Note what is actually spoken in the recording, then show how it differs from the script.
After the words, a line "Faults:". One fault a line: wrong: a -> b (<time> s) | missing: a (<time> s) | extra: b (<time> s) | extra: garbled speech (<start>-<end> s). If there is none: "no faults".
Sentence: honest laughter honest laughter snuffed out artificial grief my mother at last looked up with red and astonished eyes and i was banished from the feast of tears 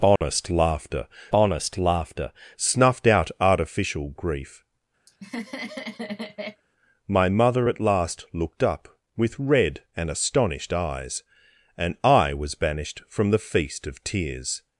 honest laughter honest laughter snuffed out artificial grief my mother at last looked up with red and astonished eyes and i was banished from the feast of tears
Faults:
no faults